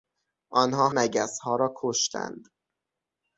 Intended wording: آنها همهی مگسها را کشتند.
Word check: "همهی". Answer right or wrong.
wrong